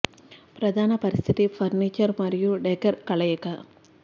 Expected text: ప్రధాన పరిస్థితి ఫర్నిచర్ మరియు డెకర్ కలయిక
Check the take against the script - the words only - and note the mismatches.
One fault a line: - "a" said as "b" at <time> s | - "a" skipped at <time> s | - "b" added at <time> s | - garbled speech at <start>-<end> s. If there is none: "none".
none